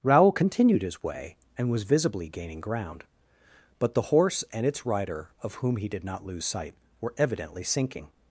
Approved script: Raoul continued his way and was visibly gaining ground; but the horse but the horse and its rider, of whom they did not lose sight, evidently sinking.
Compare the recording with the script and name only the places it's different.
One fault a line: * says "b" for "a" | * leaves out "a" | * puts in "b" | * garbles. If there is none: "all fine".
* leaves out "but the horse"
* says "he" for "they"
* puts in "were"